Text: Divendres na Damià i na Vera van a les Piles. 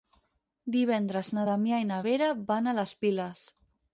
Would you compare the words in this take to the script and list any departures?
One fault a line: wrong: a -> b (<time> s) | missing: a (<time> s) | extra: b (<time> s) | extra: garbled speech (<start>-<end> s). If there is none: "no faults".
no faults